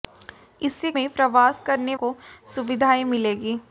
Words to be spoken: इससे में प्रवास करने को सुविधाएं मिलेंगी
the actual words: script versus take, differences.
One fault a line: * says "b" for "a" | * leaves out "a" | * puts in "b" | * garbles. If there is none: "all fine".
all fine